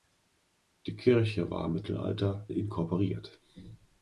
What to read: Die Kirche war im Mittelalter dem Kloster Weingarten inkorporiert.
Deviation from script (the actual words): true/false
true